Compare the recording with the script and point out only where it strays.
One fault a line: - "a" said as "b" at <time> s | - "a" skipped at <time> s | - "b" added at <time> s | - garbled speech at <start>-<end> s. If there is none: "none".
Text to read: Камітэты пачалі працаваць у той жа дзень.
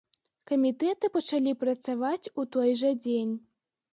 none